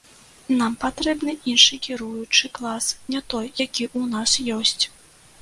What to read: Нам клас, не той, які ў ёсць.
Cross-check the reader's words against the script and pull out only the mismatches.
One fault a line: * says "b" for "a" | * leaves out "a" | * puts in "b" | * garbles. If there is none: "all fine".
* puts in "патрэбны іншы кіруючы"
* puts in "нас"